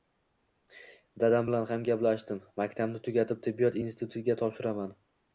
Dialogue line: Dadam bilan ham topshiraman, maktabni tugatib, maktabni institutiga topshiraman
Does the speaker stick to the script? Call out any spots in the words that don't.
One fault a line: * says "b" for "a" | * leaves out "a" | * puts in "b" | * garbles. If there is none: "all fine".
* says "gaplashdim" for "topshiraman"
* says "tibbiyot" for "maktabni"